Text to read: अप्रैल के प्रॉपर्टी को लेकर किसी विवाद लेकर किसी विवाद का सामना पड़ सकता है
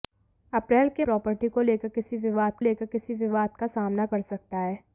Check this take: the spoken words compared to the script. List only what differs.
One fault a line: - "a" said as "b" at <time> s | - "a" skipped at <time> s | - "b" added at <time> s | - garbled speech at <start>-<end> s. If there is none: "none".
none